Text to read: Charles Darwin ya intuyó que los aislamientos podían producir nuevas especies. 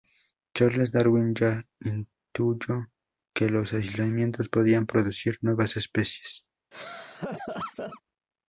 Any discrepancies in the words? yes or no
no